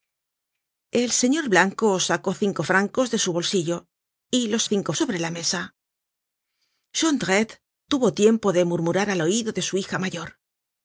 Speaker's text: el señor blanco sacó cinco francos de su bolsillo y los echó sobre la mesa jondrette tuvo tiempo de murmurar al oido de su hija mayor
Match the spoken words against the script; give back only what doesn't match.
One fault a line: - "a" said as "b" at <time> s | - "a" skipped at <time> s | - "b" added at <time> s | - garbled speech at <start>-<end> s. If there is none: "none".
- "echó" said as "cinco" at 4.6 s